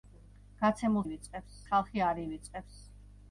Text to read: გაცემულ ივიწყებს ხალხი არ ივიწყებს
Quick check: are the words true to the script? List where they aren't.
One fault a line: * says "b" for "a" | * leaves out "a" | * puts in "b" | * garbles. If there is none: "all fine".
all fine